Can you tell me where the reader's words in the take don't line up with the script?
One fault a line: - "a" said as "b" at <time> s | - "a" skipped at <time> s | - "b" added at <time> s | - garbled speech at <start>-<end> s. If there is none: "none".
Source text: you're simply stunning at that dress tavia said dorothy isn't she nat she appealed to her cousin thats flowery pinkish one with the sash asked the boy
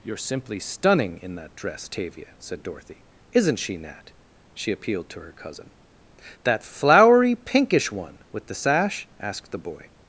- "at" said as "in" at 1.2 s
- "thats" said as "that" at 6.4 s